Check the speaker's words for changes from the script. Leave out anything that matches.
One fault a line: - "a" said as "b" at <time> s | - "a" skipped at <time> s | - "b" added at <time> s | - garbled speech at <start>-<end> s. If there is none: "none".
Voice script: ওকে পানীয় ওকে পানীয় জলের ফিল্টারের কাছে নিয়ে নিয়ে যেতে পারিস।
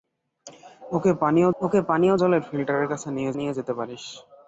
none